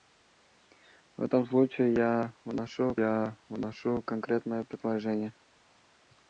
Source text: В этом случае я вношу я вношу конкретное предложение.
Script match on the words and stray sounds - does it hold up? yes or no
yes